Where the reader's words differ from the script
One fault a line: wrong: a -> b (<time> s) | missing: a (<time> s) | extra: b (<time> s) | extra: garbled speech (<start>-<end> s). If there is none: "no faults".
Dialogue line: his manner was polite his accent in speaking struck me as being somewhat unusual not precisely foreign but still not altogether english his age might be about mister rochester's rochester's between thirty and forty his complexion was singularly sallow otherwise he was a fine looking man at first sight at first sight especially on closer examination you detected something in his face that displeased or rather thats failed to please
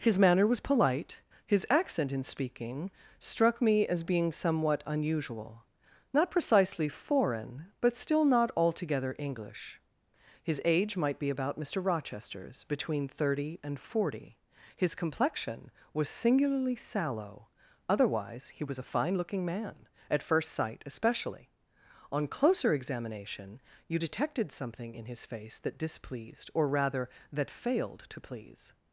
missing: rochester's (12.6 s)
missing: at first sight (20.8 s)
wrong: thats -> that (27.3 s)